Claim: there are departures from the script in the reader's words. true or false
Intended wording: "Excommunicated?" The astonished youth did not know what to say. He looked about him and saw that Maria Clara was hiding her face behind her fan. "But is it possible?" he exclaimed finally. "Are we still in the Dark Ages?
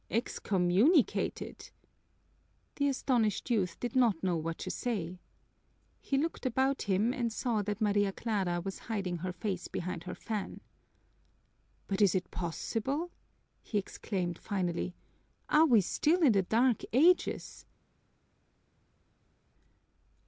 false